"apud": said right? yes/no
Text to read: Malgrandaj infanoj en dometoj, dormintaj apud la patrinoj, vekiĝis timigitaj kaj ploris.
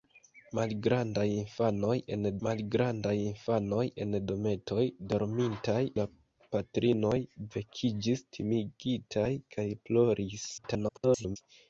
no